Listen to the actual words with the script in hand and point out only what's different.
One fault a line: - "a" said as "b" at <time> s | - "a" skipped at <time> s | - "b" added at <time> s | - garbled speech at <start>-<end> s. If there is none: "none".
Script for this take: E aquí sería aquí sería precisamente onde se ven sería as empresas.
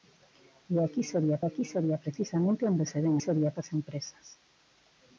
none